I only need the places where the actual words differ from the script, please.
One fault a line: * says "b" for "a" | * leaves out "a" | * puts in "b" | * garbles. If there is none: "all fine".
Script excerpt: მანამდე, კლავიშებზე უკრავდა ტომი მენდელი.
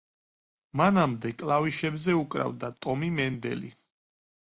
all fine